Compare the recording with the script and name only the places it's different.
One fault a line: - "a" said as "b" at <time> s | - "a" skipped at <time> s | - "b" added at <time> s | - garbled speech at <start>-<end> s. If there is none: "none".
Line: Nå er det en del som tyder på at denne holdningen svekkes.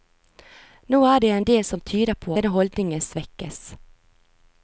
- "at" skipped at 2.4 s